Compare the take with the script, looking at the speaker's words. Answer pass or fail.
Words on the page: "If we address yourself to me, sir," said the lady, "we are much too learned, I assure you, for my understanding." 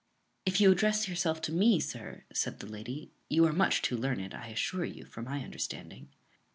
fail